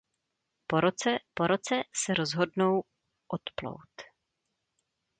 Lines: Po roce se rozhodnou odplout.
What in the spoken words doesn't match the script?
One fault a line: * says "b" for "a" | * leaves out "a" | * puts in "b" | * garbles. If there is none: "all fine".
* puts in "po roce"